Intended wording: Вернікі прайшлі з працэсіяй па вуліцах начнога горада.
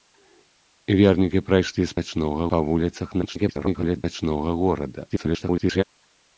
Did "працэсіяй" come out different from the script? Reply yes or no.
yes